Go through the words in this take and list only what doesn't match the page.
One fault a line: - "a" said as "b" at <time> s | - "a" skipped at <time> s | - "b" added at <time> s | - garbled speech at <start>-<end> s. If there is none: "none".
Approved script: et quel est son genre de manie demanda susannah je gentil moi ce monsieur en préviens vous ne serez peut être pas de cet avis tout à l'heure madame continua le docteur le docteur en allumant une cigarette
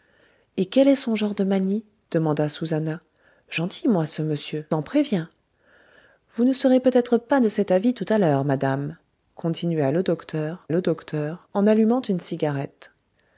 none